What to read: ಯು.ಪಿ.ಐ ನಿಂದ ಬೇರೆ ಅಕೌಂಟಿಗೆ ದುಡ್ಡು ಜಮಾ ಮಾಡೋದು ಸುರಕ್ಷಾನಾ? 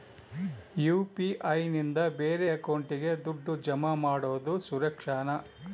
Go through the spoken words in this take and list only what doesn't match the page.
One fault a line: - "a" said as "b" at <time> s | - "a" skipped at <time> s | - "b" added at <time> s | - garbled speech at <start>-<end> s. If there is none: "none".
none